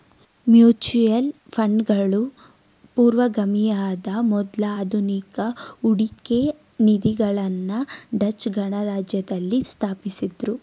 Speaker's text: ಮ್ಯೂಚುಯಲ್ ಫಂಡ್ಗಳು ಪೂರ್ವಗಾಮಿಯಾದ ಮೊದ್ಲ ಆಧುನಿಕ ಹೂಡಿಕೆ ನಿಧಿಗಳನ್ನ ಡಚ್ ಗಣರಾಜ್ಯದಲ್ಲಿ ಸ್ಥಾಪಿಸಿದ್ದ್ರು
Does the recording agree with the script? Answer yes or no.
yes